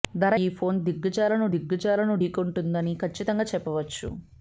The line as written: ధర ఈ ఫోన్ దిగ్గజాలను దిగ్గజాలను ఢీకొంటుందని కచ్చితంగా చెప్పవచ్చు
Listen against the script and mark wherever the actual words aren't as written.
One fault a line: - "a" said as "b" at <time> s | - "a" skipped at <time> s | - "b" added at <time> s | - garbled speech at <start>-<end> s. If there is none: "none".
none